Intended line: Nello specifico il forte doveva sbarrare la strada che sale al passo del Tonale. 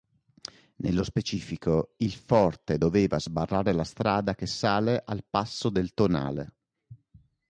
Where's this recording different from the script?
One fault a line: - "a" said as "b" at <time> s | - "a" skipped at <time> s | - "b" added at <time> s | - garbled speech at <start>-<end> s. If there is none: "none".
none